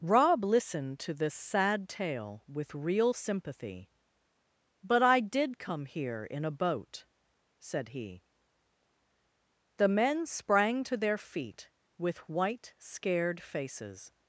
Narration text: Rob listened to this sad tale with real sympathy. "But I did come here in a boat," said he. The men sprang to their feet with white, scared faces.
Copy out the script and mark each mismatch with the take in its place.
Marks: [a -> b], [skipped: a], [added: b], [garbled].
Rob listened to this sad tale with real sympathy. "But I did come here in a boat," said he. The men sprang to their feet with white, scared faces.